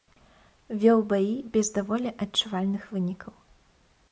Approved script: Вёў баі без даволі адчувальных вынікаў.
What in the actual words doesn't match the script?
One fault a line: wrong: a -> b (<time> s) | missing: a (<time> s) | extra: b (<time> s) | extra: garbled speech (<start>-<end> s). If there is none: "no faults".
no faults